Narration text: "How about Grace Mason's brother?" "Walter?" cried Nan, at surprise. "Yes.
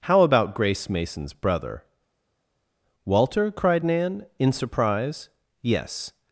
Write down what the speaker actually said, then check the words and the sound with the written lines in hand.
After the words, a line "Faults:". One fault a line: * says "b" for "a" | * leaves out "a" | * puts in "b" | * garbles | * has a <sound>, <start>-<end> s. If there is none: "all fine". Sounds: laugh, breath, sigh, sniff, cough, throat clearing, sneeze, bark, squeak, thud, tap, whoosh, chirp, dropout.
"How about Grace Mason's brother?" "Walter?" cried Nan, in surprise. "Yes.
Faults:
* says "in" for "at"